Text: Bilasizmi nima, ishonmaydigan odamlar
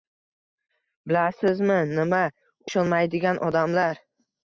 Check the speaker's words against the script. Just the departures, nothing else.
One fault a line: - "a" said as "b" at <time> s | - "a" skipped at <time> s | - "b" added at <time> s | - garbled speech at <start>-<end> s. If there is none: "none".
none